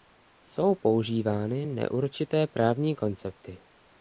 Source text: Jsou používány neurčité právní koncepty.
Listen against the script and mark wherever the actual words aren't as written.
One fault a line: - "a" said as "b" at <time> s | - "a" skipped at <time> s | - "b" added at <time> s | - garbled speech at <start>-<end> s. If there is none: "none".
none